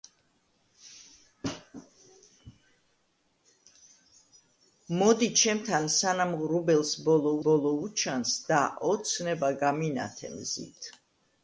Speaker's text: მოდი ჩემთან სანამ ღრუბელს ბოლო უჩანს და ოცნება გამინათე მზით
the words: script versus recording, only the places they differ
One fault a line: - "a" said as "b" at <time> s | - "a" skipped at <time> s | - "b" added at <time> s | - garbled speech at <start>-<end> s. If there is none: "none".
- "ბოლო" added at 7.5 s